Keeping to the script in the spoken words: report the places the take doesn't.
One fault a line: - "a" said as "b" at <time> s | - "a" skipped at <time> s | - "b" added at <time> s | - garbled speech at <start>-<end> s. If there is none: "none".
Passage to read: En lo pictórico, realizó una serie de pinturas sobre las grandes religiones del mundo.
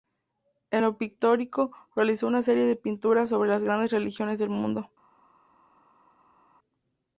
none